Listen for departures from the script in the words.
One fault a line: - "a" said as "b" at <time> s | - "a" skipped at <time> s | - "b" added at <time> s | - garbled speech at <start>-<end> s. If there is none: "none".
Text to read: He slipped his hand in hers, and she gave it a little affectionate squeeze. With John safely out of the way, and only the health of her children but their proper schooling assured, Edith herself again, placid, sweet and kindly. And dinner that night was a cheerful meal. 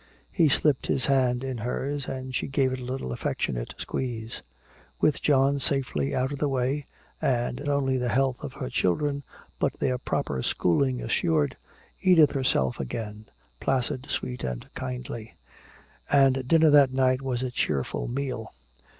none